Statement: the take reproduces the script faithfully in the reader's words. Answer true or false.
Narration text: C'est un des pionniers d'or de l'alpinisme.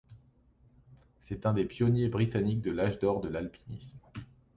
false